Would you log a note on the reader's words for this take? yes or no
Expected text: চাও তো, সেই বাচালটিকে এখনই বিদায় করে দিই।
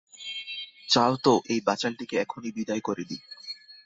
yes